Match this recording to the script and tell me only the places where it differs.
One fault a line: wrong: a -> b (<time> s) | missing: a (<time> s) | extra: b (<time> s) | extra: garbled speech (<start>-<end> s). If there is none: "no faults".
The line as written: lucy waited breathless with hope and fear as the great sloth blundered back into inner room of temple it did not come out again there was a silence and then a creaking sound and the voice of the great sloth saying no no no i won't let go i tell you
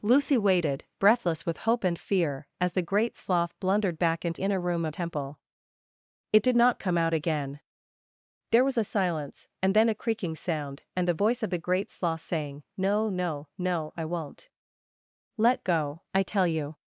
no faults